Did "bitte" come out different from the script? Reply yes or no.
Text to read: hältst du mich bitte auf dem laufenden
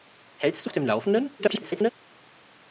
yes